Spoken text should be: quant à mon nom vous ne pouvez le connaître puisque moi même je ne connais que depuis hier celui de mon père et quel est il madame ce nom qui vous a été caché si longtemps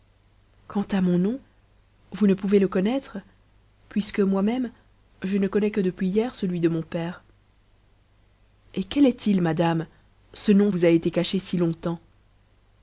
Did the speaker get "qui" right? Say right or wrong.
wrong